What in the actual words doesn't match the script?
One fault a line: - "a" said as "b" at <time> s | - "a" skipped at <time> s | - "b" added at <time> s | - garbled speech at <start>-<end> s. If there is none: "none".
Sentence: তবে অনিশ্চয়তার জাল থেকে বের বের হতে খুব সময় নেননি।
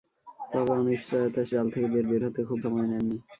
none